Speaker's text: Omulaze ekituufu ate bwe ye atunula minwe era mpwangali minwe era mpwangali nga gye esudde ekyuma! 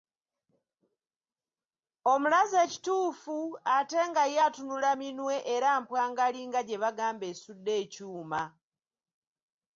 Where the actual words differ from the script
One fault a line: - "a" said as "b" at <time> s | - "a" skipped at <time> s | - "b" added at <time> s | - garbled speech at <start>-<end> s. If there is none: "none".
- "bwe" said as "nga" at 4.1 s
- "minwe era mpwangali" skipped at 6.4 s
- "bagamba" added at 6.8 s